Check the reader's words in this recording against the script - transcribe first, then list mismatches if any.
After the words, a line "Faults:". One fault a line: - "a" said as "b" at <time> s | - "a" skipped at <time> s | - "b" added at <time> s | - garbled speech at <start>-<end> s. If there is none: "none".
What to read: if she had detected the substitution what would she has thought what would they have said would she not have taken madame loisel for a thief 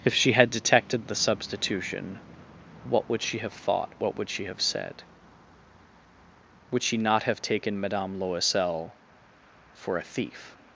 if she had detected the substitution what would she have thought what would she have said would she not have taken madame loisel for a thief
Faults:
- "has" said as "have" at 3.4 s
- "they" said as "she" at 4.3 s